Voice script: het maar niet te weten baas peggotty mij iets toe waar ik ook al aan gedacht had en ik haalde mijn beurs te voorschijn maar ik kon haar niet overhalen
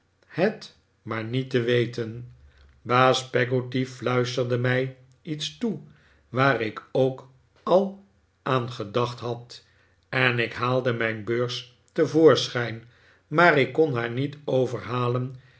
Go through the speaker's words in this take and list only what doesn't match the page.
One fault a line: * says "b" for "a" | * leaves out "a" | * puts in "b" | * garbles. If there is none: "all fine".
* puts in "fluisterde"